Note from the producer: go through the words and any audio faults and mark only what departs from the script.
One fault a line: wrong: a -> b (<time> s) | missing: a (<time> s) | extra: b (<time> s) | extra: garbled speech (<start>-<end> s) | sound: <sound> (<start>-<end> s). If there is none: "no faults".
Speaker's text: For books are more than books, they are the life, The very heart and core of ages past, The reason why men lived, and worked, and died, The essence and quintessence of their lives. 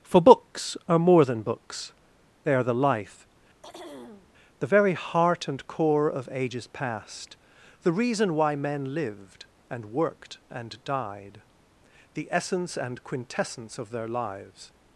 sound: throat clearing (3.6-4.3 s)